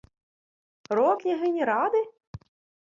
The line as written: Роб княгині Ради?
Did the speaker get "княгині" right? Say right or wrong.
right